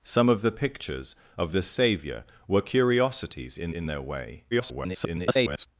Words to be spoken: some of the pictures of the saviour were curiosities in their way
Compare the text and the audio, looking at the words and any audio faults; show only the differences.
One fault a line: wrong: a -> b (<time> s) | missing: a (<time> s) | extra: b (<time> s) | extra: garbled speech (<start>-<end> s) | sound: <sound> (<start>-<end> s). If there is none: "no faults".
extra: in (3.7 s)
extra: garbled speech (4.5-5.7 s)